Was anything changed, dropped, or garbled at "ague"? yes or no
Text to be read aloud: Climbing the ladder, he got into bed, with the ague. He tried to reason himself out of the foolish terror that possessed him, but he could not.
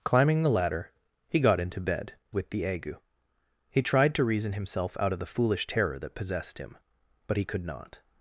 no